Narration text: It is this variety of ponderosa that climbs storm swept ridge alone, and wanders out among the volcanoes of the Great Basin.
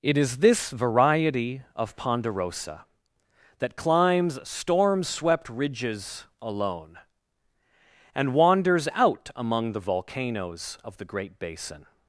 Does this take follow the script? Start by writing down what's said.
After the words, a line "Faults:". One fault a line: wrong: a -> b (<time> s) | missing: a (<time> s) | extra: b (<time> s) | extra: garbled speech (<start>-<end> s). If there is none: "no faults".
It is this variety of ponderosa that climbs storm swept ridges alone, and wanders out among the volcanoes of the Great Basin.
Faults:
wrong: ridge -> ridges (5.5 s)